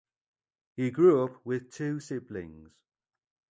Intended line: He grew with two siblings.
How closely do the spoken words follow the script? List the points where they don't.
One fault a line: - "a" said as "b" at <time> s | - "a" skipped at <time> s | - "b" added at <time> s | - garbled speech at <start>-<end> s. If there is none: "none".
- "up" added at 1.2 s